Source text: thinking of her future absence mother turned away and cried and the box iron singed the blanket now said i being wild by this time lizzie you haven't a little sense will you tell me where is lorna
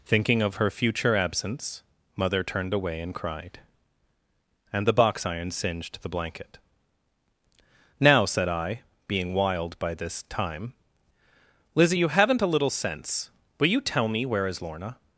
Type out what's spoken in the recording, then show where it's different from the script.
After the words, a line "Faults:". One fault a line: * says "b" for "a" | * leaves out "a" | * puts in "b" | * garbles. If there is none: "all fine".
thinking of her future absence mother turned away and cried and the box iron singed the blanket now said i being wild by this time lizzie you haven't a little sense will you tell me where is lorna
Faults:
all fine